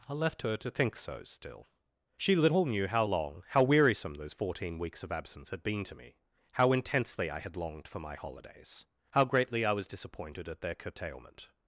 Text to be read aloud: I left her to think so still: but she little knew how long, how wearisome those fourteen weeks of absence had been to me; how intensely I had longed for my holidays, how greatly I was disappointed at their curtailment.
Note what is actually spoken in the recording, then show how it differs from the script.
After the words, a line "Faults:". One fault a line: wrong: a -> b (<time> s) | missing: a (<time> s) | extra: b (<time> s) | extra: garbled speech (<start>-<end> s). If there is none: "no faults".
I left her to think so still: she little knew how long, how wearisome those fourteen weeks of absence had been to me; how intensely I had longed for my holidays, how greatly I was disappointed at their curtailment.
Faults:
missing: but (1.7 s)